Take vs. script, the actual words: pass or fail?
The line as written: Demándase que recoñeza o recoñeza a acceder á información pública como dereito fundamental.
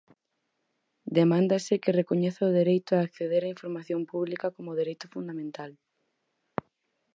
fail